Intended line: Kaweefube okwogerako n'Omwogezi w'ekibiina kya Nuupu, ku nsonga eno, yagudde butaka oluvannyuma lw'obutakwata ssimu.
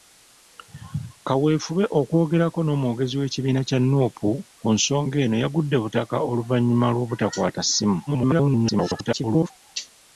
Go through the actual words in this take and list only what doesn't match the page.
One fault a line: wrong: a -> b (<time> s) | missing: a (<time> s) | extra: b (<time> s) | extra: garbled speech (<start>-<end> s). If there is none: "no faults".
extra: garbled speech (8.1-9.5 s)